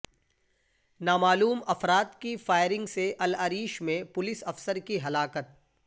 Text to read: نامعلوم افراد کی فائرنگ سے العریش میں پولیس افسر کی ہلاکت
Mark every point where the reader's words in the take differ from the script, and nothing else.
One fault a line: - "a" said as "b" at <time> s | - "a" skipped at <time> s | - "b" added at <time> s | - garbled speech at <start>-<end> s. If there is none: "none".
none